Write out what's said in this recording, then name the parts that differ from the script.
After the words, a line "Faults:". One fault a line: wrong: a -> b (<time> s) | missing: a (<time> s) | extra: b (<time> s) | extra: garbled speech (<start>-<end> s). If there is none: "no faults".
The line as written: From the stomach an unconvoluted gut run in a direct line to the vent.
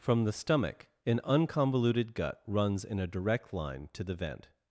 From the stomach an unconvoluted gut runs in a direct line to the vent.
Faults:
wrong: run -> runs (2.5 s)